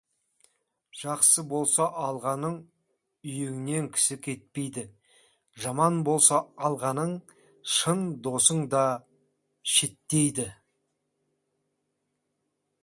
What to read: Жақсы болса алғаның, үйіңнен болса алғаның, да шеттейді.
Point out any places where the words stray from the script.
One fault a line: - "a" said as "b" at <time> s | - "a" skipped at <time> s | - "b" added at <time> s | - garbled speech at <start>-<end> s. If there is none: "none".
- "кісі кетпейді жаман" added at 4.0 s
- "шын досың" added at 7.8 s